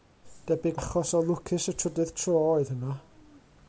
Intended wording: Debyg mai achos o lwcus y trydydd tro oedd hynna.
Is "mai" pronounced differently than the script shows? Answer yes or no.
yes